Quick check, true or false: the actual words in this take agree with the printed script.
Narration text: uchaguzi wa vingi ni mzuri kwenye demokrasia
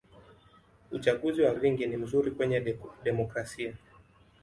true